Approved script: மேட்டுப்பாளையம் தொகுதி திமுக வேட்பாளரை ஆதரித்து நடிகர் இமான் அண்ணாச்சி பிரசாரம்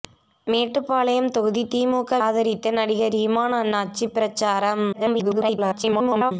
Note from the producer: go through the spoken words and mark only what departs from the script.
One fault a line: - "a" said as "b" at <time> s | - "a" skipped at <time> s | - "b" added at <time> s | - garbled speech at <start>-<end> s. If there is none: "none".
- "வேட்பாளரை" skipped at 2.2 s
- garbled speech at 4.9-6.3 s